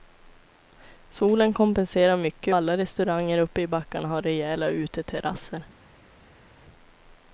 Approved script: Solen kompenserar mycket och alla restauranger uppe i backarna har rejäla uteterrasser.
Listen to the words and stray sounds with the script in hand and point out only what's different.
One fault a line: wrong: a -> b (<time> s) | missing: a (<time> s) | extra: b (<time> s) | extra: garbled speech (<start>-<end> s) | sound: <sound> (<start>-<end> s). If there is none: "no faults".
missing: och (2.5 s)